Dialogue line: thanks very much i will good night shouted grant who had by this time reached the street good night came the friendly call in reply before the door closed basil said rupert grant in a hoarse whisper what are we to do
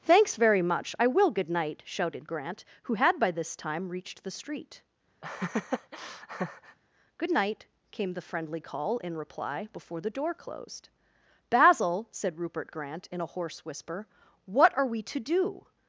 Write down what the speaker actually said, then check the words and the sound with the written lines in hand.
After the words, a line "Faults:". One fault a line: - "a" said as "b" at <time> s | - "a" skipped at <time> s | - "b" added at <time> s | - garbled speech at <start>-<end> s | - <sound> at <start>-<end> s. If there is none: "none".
thanks very much i will good night shouted grant who had by this time reached the street good night came the friendly call in reply before the door closed basil said rupert grant in a hoarse whisper what are we to do
Faults:
- laugh at 5.2-6.8 s